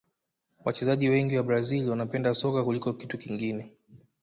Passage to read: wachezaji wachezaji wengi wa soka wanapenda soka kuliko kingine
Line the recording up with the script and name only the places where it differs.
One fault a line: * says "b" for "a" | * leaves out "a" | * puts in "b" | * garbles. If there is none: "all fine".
* leaves out "wachezaji"
* says "brazil" for "soka"
* puts in "kitu"